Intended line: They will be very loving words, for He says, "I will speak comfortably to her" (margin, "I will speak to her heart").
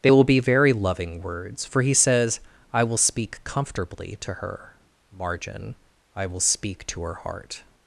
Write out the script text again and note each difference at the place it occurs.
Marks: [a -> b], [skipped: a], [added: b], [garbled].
They will be very loving words, for He says, "I will speak comfortably to her" (margin, "I will speak to her heart").